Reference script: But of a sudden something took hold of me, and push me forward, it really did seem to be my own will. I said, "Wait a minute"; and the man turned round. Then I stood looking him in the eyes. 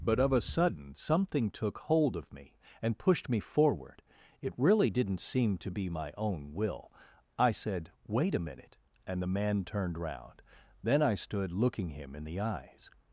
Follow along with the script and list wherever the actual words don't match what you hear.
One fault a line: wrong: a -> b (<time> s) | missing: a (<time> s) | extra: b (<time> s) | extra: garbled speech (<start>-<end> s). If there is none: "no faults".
wrong: push -> pushed (3.0 s)
wrong: did -> didn't (4.9 s)